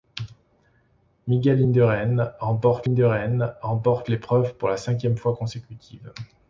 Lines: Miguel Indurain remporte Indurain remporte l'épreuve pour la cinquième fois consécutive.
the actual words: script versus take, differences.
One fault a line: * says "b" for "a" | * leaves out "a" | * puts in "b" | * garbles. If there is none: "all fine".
all fine